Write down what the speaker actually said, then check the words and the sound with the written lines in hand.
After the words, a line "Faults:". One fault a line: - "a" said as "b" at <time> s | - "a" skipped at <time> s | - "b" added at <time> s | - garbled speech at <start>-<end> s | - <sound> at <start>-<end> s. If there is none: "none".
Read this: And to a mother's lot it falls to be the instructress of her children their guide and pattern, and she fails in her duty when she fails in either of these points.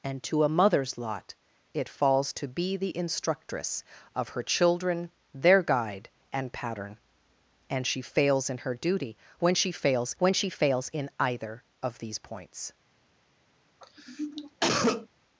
And to a mother's lot it falls to be the instructress of her children their guide and pattern, and she fails in her duty when she fails when she fails in either of these points.
Faults:
- "when she fails" added at 10.2 s
- cough at 13.8-15.1 s